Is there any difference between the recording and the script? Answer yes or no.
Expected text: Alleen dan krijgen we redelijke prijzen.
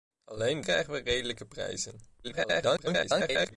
yes